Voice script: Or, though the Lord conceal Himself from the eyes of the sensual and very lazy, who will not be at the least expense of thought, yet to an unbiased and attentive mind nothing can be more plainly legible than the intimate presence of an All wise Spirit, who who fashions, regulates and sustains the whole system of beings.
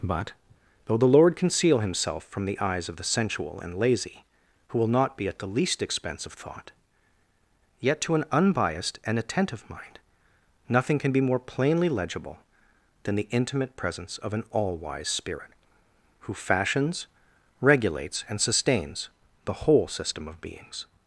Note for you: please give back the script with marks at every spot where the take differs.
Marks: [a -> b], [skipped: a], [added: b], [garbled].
[Or, -> But] though the Lord conceal Himself from the eyes of the sensual and [skipped: very] lazy, who will not be at the least expense of thought, yet to an unbiased and attentive mind nothing can be more plainly legible than the intimate presence of an All wise Spirit, who [skipped: who] fashions, regulates and sustains the whole system of beings.